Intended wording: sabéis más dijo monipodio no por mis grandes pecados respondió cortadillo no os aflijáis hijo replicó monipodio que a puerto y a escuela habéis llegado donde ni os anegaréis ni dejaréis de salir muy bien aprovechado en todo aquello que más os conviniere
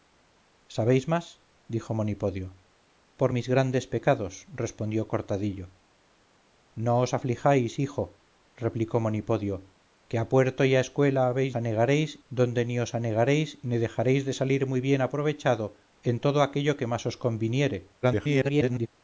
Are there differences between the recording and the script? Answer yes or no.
yes